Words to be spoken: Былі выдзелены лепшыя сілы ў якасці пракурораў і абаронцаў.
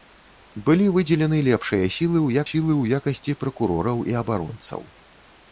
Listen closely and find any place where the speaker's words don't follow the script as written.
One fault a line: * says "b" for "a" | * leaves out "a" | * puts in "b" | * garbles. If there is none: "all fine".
* puts in "сілы ў"